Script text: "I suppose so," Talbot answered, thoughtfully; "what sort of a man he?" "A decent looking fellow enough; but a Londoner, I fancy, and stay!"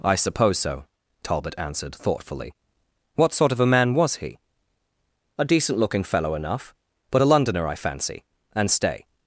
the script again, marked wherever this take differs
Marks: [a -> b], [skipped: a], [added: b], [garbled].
"I suppose so," Talbot answered, thoughtfully; "what sort of a man [added: was] he?" "A decent looking fellow enough; but a Londoner, I fancy, and stay!"